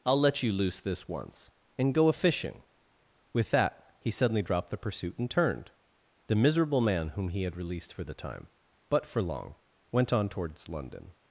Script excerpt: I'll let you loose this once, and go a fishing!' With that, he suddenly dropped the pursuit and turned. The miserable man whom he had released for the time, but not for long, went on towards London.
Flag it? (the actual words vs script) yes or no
yes